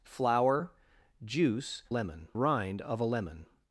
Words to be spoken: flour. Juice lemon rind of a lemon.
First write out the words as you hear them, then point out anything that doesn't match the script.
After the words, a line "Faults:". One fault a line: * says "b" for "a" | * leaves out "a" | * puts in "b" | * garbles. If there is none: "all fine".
flour. Juice lemon rind of a lemon.
Faults:
all fine